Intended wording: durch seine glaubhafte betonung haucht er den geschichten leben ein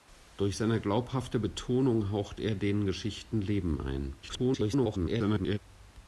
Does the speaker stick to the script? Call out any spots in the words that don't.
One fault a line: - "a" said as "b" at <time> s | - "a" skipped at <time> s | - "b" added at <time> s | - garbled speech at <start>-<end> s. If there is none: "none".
- garbled speech at 4.2-5.6 s